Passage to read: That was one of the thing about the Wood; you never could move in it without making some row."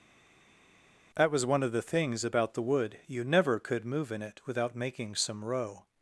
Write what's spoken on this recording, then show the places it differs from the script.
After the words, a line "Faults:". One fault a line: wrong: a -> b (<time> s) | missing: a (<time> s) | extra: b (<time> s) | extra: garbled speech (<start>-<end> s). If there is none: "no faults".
That was one of the things about the Wood; you never could move in it without making some row."
Faults:
wrong: thing -> things (1.8 s)